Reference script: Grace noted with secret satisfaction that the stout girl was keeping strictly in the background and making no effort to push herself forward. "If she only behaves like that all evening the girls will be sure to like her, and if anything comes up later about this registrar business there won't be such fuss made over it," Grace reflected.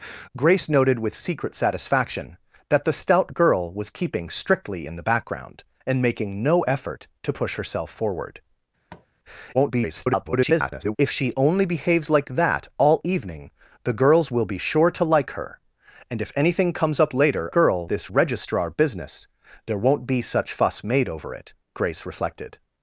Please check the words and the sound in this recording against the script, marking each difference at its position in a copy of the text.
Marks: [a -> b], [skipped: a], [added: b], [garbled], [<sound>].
Grace noted with secret satisfaction that the stout girl was keeping strictly in the background and making no effort to push herself forward. [tap] [garbled] "If she only behaves like that all evening the girls will be sure to like her, and if anything comes up later [about -> girl] this registrar business there won't be such fuss made over it," Grace reflected.